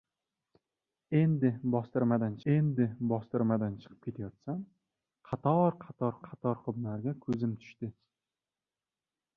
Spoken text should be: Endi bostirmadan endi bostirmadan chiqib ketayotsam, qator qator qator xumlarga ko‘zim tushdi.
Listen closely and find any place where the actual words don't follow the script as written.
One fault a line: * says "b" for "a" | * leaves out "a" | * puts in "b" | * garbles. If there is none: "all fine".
all fine